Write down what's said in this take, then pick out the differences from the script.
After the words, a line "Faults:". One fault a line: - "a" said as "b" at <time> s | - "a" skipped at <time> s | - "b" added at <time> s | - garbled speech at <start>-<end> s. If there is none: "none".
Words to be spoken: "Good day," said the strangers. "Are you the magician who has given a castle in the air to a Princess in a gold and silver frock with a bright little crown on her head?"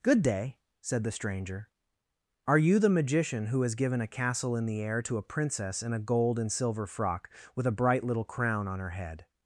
"Good day," said the stranger. "Are you the magician who has given a castle in the air to a Princess in a gold and silver frock with a bright little crown on her head?"
Faults:
- "strangers" said as "stranger" at 1.1 s